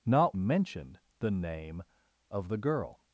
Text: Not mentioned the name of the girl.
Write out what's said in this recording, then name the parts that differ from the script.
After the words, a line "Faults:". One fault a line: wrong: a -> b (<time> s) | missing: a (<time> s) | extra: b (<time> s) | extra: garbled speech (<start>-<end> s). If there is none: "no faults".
Not mentioned the name of the girl.
Faults:
no faults